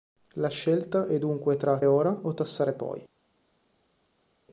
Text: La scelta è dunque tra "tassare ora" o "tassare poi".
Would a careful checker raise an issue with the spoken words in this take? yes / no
yes